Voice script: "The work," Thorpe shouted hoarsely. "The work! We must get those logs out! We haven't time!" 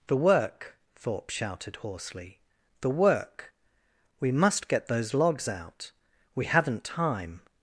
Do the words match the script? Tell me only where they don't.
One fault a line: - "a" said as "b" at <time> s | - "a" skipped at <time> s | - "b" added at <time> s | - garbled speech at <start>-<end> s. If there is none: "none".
none